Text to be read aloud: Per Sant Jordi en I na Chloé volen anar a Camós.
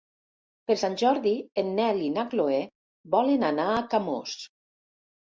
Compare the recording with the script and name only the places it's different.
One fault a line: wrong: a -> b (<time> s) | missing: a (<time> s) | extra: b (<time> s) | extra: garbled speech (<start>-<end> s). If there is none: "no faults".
extra: Nel (1.8 s)